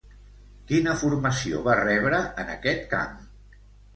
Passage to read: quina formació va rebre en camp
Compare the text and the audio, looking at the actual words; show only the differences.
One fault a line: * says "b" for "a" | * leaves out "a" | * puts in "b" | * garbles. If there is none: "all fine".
* puts in "aquest"